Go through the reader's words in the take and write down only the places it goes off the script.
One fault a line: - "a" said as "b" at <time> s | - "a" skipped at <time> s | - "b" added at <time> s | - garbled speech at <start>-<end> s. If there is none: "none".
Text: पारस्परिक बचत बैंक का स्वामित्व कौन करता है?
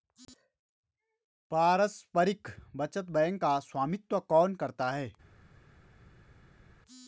none